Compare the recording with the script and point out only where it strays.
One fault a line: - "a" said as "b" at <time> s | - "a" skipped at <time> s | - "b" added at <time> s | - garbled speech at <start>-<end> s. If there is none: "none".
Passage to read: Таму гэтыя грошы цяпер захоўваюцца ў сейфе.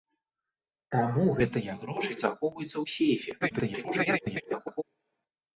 - "цяпер" skipped at 2.2 s
- garbled speech at 3.4-4.8 s